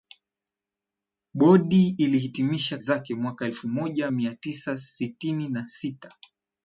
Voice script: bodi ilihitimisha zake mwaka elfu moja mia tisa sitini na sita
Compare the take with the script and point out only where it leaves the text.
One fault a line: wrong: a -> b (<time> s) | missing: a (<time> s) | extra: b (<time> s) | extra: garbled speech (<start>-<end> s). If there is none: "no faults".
no faults